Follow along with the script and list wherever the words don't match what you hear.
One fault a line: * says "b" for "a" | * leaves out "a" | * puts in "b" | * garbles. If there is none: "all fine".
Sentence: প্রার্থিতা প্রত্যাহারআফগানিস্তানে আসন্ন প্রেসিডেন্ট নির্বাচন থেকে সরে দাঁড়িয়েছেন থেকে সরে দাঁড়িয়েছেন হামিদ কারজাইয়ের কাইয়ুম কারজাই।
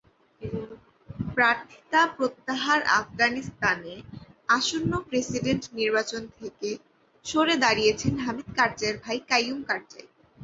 * leaves out "থেকে সরে দাঁড়িয়েছেন"
* puts in "ভাই"